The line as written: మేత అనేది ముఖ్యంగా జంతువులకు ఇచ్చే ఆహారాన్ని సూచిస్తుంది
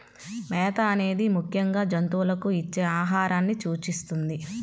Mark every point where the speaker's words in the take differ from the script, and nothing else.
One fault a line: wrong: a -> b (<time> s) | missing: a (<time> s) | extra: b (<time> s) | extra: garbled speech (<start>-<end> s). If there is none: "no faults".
no faults